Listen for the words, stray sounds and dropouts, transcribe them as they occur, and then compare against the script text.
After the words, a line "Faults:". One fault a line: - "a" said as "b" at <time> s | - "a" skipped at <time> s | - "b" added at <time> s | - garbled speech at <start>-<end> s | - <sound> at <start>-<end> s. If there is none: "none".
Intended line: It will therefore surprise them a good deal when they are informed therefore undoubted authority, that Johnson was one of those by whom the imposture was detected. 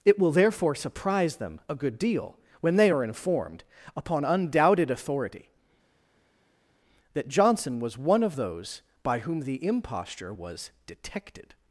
It will therefore surprise them a good deal when they are informed upon undoubted authority, that Johnson was one of those by whom the imposture was detected.
Faults:
- "therefore" said as "upon" at 4.0 s